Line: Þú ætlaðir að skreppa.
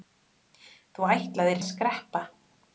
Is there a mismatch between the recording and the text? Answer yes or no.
no